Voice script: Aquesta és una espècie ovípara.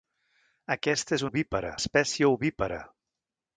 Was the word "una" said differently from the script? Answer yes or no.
yes